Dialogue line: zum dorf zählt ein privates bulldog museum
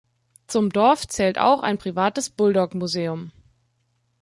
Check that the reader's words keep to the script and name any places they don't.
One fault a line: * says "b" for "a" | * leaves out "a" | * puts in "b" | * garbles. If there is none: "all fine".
* puts in "auch"